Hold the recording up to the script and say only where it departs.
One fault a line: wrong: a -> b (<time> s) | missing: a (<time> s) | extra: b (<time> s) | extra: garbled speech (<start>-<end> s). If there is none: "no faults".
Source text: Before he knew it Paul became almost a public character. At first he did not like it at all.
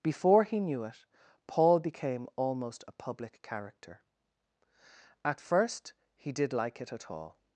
missing: not (6.5 s)